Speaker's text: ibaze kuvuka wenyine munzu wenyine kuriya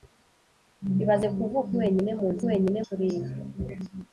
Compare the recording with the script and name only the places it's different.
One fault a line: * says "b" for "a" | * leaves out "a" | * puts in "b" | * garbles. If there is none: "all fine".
all fine